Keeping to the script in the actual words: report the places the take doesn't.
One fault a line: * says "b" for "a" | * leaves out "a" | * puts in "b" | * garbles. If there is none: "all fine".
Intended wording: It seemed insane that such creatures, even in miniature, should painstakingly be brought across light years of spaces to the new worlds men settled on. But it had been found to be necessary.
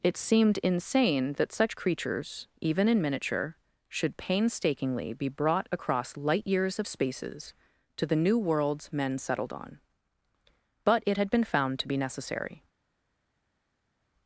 all fine